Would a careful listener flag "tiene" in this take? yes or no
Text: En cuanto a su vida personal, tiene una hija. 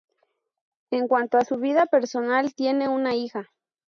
no